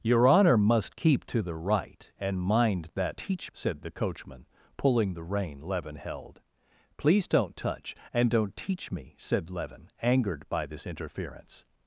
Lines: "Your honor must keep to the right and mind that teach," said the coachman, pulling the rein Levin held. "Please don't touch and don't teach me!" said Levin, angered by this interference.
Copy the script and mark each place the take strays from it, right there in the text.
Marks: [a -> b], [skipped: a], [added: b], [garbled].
"Your honor must keep to the right and mind that teach," said the coachman, pulling the rein Levin held. "Please don't touch and don't teach me!" said Levin, angered by this interference.